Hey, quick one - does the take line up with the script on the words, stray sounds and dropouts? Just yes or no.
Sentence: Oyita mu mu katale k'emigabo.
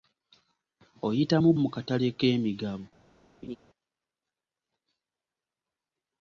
no